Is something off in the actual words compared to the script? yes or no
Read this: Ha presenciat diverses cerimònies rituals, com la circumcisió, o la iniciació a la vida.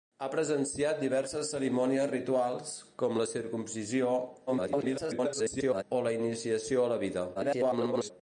yes